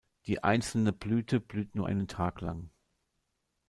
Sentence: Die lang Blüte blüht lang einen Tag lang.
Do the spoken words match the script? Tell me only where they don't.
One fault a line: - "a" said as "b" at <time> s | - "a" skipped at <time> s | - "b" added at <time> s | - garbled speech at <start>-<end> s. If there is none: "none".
- "lang" said as "einzelne" at 0.4 s
- "lang" said as "nur" at 1.8 s